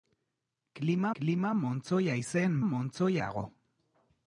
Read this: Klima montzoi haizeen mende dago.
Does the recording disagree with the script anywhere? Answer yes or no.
yes